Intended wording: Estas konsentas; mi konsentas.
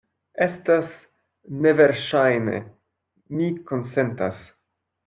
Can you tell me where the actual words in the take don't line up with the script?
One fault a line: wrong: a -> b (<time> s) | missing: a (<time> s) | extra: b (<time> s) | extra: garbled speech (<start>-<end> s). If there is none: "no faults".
wrong: konsentas -> neverŝajne (1.7 s)